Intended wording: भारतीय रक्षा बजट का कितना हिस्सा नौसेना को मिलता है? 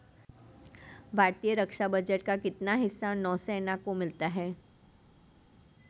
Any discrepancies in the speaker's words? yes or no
no